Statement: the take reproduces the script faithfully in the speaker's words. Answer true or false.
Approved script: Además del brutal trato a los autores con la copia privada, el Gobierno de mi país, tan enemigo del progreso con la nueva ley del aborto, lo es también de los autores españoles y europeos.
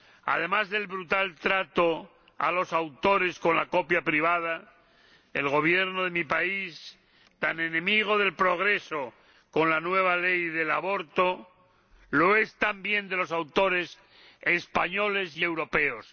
true